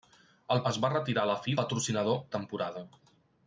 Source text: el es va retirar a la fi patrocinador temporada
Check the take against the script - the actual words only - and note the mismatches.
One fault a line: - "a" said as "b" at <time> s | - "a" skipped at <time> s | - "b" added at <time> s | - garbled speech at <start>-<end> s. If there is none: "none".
none